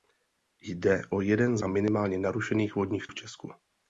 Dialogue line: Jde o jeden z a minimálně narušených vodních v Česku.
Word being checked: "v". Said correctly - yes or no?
yes